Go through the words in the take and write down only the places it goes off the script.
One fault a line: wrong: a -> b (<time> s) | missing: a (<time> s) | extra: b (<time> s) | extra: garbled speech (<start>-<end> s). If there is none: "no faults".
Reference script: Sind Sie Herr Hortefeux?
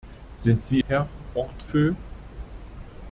no faults